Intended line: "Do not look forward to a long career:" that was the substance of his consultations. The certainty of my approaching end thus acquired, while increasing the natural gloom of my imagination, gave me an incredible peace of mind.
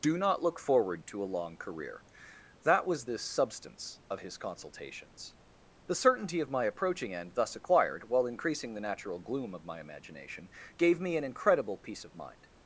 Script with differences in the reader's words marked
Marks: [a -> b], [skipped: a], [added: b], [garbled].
"Do not look forward to a long career:" that was the substance of his consultations. The certainty of my approaching end thus acquired, while increasing the natural gloom of my imagination, gave me an incredible peace of mind.